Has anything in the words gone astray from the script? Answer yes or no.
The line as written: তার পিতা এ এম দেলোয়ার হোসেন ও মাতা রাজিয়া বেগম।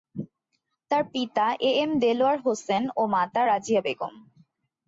no